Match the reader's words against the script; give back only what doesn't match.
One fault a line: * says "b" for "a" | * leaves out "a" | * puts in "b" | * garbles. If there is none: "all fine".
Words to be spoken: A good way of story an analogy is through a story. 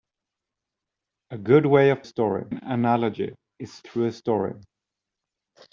all fine